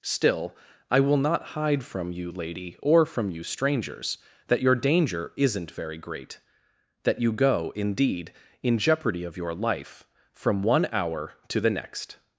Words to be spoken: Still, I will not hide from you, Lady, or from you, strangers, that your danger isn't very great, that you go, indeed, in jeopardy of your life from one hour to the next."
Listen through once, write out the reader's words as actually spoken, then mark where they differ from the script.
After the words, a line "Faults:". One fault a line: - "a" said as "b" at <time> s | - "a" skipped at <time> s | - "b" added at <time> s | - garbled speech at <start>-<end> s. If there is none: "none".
Still, I will not hide from you, Lady, or from you, strangers, that your danger isn't very great, that you go, indeed, in jeopardy of your life from one hour to the next."
Faults:
none